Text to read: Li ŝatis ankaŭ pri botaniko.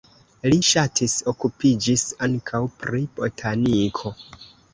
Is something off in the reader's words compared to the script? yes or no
yes